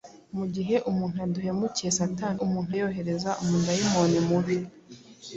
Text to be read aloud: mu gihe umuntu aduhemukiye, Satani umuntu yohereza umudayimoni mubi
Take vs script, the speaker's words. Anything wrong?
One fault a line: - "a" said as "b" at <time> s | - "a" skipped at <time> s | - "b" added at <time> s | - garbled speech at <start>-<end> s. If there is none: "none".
none